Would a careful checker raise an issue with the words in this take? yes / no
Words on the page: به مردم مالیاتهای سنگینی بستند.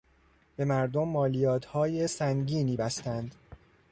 no